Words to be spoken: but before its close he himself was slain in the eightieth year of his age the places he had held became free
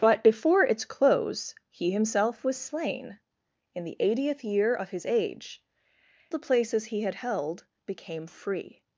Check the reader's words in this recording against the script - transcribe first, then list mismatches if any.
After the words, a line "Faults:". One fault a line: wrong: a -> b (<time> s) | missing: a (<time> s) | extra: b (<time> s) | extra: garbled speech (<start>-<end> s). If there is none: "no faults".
but before its close he himself was slain in the eightieth year of his age the places he had held became free
Faults:
no faults